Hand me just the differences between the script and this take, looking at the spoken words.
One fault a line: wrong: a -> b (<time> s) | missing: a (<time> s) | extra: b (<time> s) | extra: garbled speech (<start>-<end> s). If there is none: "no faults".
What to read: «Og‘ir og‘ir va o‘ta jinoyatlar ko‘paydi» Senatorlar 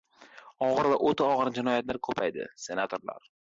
missing: og‘ir (0.9 s)
extra: og‘ir (1.3 s)